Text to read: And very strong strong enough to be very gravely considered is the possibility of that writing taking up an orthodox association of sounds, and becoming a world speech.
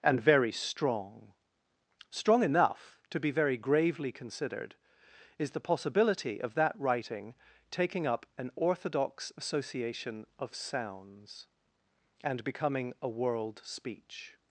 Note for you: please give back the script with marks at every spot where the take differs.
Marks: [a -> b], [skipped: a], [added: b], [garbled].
And very strong strong enough to be very gravely considered is the possibility of that writing taking up an orthodox association of sounds, and becoming a world speech.